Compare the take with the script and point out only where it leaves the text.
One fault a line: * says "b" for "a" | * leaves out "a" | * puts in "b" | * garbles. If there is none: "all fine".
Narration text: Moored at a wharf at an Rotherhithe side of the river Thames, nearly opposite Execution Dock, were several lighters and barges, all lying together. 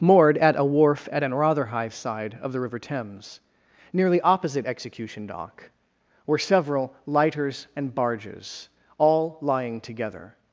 all fine